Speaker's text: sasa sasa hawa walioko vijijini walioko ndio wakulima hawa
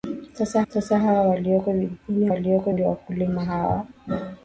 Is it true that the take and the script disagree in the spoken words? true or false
false